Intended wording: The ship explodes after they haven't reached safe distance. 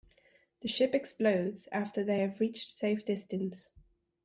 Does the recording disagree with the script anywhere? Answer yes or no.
yes